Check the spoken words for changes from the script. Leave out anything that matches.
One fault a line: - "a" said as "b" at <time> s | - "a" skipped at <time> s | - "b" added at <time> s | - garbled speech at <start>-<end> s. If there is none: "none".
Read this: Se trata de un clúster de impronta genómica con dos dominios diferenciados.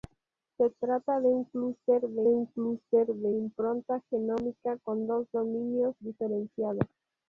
- "un clúster de" added at 2.3 s